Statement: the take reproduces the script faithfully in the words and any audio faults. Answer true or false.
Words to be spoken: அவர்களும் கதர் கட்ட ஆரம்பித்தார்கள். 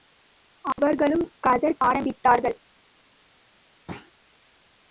false